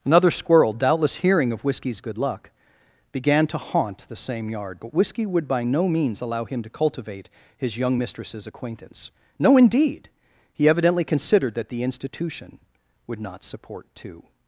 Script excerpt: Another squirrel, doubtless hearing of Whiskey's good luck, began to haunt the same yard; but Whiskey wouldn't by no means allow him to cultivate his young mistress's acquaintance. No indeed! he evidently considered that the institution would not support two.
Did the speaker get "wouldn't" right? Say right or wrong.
wrong